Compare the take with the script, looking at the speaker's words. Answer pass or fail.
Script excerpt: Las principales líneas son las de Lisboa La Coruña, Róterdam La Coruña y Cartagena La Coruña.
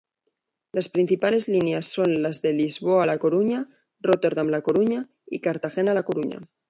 pass